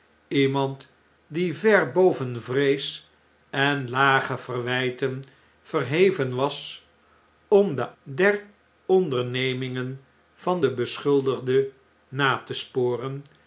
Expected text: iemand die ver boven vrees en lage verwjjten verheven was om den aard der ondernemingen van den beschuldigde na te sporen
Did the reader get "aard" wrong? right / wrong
wrong